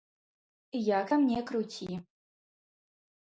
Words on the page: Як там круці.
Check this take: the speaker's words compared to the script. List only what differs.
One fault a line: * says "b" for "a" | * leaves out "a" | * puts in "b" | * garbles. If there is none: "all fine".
* puts in "не"